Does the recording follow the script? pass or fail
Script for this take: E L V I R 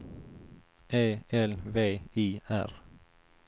pass